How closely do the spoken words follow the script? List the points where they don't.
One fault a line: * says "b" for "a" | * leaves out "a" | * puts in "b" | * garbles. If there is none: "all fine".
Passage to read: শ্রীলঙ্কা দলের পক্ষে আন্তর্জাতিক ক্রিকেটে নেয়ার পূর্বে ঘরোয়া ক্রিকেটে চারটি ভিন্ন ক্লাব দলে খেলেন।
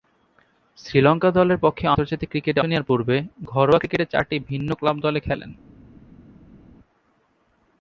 all fine